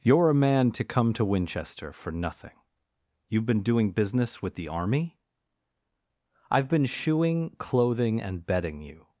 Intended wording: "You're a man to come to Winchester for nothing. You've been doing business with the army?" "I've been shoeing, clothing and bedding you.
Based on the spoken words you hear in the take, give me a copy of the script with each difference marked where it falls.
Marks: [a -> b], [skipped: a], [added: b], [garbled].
"You're a man to come to Winchester for nothing. You've been doing business with the army?" "I've been shoeing, clothing and bedding you.